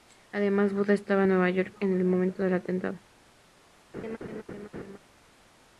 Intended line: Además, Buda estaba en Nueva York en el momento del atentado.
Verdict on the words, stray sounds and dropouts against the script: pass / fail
fail